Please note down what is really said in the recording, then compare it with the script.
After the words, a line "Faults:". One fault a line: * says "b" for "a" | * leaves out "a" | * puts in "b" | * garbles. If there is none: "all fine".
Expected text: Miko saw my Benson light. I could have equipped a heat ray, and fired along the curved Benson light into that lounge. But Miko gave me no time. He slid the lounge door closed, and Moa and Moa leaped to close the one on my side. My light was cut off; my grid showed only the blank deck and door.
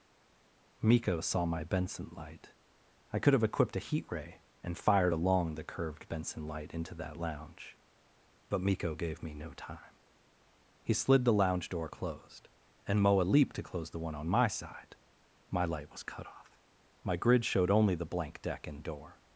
Miko saw my Benson light. I could have equipped a heat ray, and fired along the curved Benson light into that lounge. But Miko gave me no time. He slid the lounge door closed, and Moa leaped to close the one on my side. My light was cut off; my grid showed only the blank deck and door.
Faults:
* leaves out "and Moa"